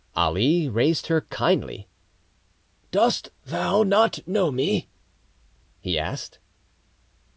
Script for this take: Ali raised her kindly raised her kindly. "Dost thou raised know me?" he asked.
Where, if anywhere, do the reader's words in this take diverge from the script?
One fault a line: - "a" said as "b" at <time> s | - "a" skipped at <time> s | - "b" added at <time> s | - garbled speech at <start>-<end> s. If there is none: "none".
- "raised her kindly" skipped at 1.9 s
- "raised" said as "not" at 3.8 s